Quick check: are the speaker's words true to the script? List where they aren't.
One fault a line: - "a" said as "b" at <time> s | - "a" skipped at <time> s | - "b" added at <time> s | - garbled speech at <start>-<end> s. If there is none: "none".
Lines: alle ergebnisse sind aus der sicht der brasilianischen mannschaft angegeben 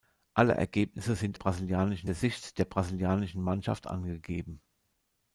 - "aus" said as "brasilianischen" at 1.3 s